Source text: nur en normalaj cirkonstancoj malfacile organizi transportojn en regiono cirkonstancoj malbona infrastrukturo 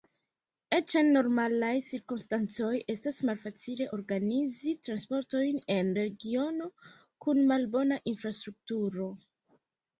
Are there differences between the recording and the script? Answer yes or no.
yes